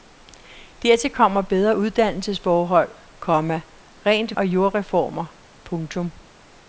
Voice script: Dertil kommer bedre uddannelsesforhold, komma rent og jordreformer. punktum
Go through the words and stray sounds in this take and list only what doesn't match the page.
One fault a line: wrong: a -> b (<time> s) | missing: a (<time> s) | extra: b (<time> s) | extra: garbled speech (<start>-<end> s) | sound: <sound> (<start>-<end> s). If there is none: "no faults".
no faults